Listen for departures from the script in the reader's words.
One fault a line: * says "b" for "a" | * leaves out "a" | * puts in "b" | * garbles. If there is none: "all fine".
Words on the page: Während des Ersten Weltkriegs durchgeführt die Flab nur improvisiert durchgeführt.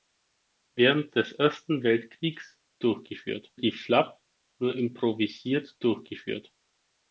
all fine